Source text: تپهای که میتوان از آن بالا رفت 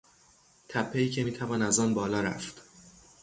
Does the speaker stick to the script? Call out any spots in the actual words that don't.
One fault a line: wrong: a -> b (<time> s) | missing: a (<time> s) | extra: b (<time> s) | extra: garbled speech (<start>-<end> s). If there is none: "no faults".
no faults